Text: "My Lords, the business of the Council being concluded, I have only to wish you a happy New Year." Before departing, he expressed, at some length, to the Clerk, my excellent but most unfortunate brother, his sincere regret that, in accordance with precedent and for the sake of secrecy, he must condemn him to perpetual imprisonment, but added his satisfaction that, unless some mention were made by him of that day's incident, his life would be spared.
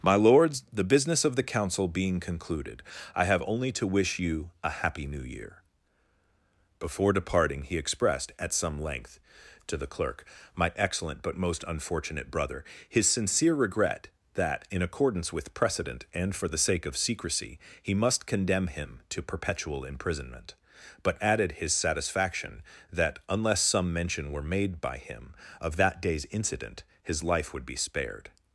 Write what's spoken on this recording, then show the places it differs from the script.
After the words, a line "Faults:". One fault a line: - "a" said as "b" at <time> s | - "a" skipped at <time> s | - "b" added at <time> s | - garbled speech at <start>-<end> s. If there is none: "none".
"My Lords, the business of the Council being concluded, I have only to wish you a happy New Year." Before departing, he expressed, at some length, to the Clerk, my excellent but most unfortunate brother, his sincere regret that, in accordance with precedent and for the sake of secrecy, he must condemn him to perpetual imprisonment, but added his satisfaction that, unless some mention were made by him of that day's incident, his life would be spared.
Faults:
none